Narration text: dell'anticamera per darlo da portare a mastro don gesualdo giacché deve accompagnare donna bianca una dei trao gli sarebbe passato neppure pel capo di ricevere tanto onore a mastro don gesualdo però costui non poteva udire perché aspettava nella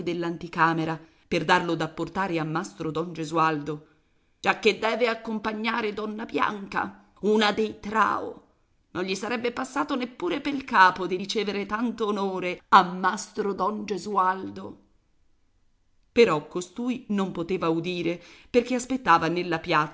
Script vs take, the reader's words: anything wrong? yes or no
yes